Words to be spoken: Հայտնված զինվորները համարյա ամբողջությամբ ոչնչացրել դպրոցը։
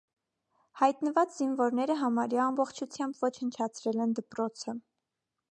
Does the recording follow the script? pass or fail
fail